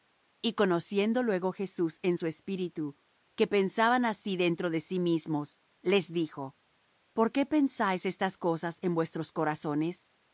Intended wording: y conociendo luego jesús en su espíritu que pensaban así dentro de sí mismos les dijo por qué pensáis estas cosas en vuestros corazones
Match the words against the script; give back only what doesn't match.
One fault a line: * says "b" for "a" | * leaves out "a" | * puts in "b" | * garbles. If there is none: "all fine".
all fine